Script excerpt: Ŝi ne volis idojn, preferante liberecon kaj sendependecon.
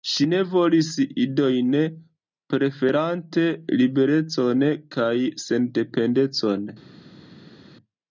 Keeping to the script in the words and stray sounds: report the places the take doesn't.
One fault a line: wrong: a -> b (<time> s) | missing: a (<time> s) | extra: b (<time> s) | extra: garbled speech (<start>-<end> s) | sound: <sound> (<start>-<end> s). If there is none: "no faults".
no faults